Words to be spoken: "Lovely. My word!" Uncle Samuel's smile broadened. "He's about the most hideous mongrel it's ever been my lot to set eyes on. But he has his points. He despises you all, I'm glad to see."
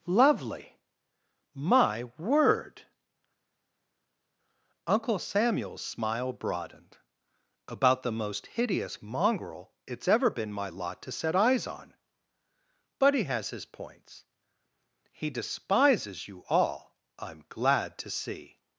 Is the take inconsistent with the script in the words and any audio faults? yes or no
yes